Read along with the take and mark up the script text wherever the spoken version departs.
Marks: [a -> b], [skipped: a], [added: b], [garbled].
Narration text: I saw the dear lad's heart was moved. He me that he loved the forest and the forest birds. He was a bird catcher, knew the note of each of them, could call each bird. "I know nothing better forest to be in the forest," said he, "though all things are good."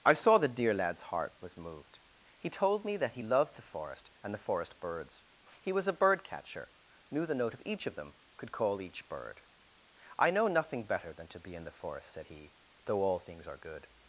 I saw the dear lad's heart was moved. He [added: told] me that he loved the forest and the forest birds. He was a bird catcher, knew the note of each of them, could call each bird. "I know nothing better [forest -> than] to be in the forest," said he, "though all things are good."